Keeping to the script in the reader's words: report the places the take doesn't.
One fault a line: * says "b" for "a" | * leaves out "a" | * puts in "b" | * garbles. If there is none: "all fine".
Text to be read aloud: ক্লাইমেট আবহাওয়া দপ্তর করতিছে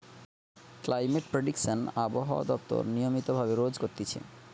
* puts in "প্রেডিকশন"
* puts in "নিয়মিত ভাবে রোজ"